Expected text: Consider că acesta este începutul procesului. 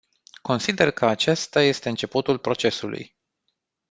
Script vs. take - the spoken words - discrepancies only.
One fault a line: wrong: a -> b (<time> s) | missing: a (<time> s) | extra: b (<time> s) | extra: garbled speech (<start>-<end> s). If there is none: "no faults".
no faults